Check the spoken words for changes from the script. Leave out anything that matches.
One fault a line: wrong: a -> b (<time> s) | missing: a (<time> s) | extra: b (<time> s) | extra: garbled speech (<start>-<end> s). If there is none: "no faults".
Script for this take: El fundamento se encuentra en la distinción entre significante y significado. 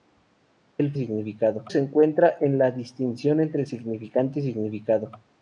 wrong: fundamento -> significado (1.0 s)